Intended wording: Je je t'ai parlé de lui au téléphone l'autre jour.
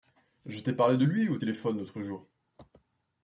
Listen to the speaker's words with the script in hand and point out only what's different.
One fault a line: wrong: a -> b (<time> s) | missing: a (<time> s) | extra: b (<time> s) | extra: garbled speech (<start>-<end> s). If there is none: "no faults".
missing: je (0.6 s)